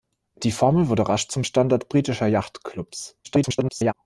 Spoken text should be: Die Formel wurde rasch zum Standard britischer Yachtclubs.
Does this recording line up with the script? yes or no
no